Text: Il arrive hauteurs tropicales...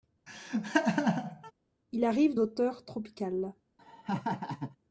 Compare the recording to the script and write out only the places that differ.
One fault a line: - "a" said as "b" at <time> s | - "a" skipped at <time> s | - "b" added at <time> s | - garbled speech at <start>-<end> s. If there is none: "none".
none